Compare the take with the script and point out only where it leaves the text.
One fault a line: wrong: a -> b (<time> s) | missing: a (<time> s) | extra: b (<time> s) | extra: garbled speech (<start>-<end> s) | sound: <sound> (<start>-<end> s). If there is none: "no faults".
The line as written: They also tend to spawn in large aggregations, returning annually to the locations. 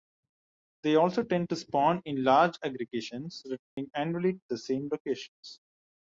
sound: dropout (3.6-3.8 s)
extra: same (4.6 s)